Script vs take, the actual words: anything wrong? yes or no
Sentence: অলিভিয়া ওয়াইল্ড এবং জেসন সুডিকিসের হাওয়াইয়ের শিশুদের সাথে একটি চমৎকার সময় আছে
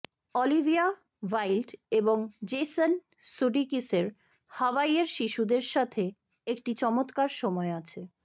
no